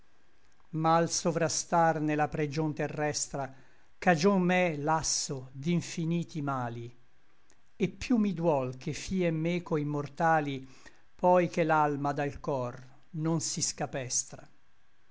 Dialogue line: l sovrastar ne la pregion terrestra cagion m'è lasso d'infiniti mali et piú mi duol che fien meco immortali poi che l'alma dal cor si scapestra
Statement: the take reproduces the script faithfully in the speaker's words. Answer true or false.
false